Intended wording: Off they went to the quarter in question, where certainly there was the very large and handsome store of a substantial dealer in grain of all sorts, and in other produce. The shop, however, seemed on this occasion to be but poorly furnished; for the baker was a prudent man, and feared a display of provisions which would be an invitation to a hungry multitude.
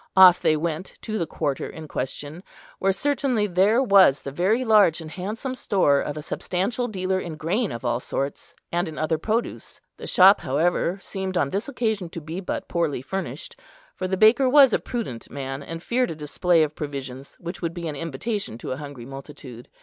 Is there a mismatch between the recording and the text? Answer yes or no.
no